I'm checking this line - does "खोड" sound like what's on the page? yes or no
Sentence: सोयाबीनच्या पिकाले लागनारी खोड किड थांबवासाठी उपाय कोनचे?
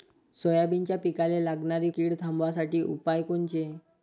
no